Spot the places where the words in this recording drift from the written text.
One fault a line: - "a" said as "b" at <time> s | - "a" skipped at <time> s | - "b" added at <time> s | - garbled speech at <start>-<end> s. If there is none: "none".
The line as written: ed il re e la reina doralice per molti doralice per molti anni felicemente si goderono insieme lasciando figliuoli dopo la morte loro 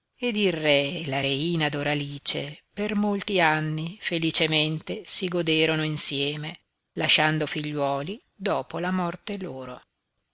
- "doralice per molti" skipped at 3.4 s